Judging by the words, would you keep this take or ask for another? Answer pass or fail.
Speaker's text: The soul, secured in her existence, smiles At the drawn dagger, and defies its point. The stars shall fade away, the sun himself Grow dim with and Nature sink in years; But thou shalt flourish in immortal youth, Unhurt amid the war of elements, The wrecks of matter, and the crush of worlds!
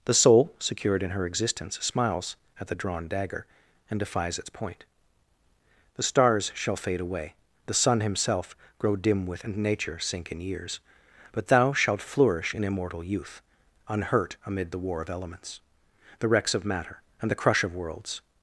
pass